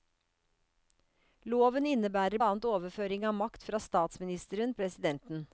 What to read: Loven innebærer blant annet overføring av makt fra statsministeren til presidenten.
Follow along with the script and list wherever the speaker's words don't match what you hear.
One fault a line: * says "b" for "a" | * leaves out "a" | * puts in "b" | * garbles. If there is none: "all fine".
* leaves out "blant"
* leaves out "til"